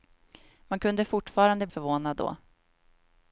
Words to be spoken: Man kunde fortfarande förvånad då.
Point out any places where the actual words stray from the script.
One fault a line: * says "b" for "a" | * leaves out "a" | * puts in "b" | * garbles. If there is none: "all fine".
all fine